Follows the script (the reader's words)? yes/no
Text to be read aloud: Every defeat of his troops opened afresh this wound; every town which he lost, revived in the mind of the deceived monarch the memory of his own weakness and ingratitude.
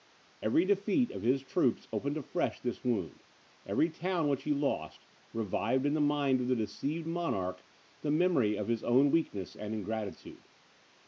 yes